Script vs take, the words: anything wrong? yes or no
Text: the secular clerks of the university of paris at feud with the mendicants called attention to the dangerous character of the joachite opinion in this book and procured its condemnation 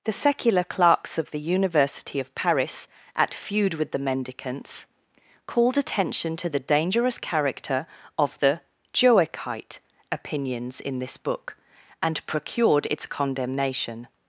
yes